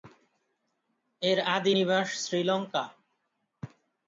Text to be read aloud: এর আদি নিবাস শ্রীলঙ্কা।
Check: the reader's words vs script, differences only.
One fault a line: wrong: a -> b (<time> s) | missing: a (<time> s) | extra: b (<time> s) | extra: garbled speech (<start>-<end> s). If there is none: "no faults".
no faults